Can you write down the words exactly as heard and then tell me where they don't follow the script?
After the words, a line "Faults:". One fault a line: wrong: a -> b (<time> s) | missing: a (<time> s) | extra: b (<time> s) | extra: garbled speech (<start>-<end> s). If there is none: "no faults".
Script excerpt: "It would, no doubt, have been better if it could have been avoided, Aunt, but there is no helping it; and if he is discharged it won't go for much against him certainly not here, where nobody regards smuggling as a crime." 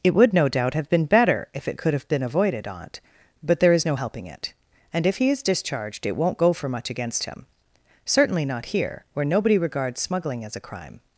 "It would, no doubt, have been better if it could have been avoided, Aunt, but there is no helping it; and if he is discharged it won't go for much against him certainly not here, where nobody regards smuggling as a crime."
Faults:
no faults